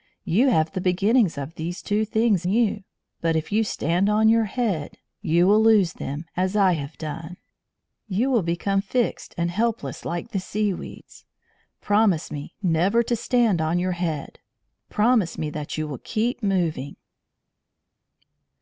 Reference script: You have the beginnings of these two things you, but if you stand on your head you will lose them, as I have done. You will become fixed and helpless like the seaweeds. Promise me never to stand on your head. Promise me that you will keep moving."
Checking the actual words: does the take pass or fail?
pass